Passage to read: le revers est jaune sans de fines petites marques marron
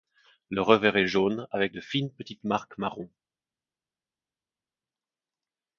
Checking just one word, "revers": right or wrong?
right